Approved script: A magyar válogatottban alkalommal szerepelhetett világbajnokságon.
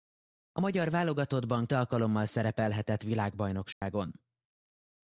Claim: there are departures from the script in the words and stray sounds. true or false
true